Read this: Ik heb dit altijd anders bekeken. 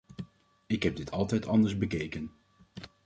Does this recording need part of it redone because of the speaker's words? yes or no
no